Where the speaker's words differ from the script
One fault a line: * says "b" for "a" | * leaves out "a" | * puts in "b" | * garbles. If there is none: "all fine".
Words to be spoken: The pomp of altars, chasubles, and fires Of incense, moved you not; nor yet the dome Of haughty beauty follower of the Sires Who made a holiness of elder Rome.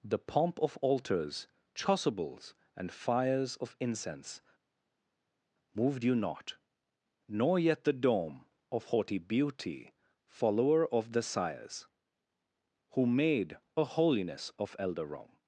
all fine